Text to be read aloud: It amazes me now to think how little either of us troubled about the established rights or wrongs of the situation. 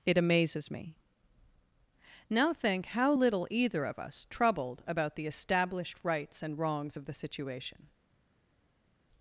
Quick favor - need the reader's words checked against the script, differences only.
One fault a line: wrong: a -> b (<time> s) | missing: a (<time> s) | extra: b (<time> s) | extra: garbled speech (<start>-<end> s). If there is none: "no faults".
missing: to (2.5 s)
wrong: or -> and (6.4 s)